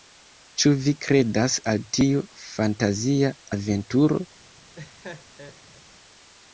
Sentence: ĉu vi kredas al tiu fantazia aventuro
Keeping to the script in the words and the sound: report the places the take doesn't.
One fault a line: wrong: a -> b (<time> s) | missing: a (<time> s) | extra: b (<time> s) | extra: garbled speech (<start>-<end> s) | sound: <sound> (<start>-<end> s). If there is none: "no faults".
sound: laugh (4.7-5.8 s)